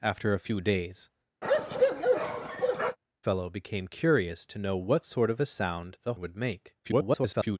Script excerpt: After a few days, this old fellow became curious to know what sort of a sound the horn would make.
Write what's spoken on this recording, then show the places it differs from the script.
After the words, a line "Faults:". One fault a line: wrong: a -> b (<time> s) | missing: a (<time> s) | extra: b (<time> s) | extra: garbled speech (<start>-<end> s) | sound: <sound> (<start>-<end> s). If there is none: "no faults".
After a few days, fellow became curious to know what sort of a sound the would make. [garbled]
Faults:
missing: this old (1.1 s)
sound: bark (1.4-3.0 s)
missing: horn (6.1 s)
extra: garbled speech (6.8-7.6 s)